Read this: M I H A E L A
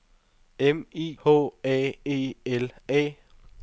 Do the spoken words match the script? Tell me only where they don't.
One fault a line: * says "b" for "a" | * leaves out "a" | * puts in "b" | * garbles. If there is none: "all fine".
all fine